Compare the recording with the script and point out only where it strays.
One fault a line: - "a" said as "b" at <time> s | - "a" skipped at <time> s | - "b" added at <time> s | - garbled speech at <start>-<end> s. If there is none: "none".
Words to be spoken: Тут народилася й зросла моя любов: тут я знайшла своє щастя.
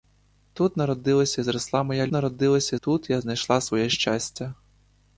- "любов" said as "народилася" at 2.1 s